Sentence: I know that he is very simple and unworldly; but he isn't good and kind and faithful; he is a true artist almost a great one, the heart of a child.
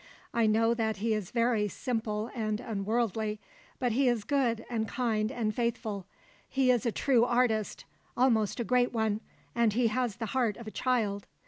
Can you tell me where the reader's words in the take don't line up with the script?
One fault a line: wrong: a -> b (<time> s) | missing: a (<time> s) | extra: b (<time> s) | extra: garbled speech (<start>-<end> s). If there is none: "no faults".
wrong: isn't -> is (4.1 s)
extra: and he has (9.5 s)